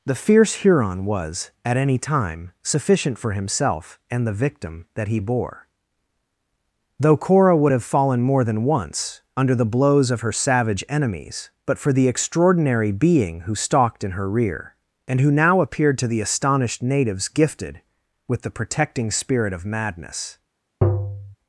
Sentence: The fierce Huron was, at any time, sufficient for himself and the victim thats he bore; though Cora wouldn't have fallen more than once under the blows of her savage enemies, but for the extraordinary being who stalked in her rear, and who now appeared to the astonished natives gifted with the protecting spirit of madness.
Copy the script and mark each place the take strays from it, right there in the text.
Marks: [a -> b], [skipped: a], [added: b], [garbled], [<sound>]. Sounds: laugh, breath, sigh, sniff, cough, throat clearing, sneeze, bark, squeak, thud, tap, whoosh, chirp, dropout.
The fierce Huron was, at any time, sufficient for himself and the victim [thats -> that] he bore; though Cora [wouldn't -> would] have fallen more than once under the blows of her savage enemies, but for the extraordinary being who stalked in her rear, and who now appeared to the astonished natives gifted with the protecting spirit of madness. [tap]